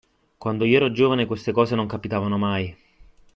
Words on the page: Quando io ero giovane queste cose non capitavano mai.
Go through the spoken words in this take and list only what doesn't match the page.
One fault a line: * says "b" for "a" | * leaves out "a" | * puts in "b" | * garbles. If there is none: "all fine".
all fine